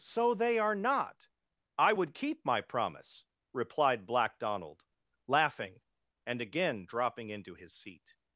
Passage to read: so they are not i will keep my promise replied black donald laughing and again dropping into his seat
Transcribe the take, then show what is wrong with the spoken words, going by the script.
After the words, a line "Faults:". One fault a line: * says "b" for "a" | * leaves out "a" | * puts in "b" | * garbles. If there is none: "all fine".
so they are not i would keep my promise replied black donald laughing and again dropping into his seat
Faults:
* says "would" for "will"